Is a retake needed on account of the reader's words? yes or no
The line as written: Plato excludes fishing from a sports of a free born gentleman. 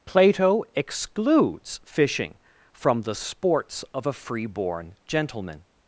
yes